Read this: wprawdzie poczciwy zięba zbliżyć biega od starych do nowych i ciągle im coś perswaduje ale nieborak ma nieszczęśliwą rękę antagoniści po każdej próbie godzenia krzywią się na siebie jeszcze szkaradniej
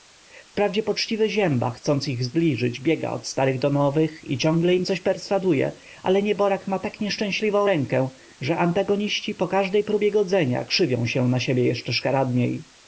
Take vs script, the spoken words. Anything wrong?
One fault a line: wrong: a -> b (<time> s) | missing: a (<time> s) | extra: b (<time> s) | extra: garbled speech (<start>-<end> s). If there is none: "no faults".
extra: chcąc ich (1.7 s)
extra: tak (6.8 s)
extra: że (8.4 s)